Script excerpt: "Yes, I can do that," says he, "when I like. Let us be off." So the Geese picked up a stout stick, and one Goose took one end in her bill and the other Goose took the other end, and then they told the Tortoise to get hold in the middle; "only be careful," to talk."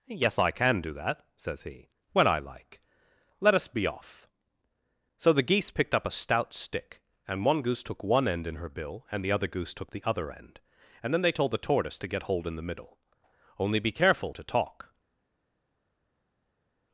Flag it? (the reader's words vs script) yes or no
no